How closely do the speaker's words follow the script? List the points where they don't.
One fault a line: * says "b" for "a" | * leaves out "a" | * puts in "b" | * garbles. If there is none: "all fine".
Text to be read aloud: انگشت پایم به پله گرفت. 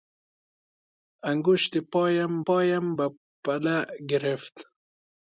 * puts in "پایم"